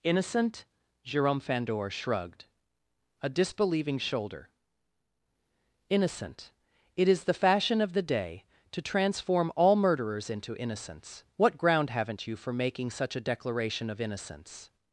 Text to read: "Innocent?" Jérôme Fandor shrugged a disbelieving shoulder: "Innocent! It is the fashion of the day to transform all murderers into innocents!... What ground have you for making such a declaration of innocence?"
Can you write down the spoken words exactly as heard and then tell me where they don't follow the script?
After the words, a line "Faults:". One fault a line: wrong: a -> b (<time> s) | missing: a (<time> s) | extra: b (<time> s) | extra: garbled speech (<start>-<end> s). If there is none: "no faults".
"Innocent?" Jérôme Fandor shrugged a disbelieving shoulder: "Innocent! It is the fashion of the day to transform all murderers into innocents!... What ground haven't you for making such a declaration of innocence?"
Faults:
wrong: have -> haven't (11.9 s)